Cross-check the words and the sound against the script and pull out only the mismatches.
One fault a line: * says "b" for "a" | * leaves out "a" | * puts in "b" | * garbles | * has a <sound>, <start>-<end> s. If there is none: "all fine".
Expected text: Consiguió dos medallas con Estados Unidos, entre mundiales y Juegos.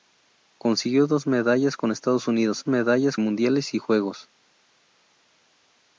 * says "medallas" for "entre"